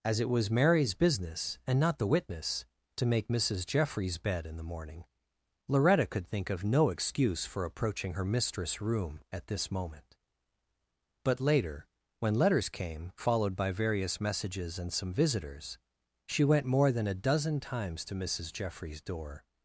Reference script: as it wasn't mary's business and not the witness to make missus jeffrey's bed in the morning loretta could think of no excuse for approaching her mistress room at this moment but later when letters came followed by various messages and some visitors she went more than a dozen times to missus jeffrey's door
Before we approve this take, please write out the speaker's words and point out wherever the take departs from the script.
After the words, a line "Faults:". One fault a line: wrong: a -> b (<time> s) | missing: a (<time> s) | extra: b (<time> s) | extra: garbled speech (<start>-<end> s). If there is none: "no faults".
as it was mary's business and not the witness to make missus jeffrey's bed in the morning loretta could think of no excuse for approaching her mistress room at this moment but later when letters came followed by various messages and some visitors she went more than a dozen times to missus jeffrey's door
Faults:
wrong: wasn't -> was (0.3 s)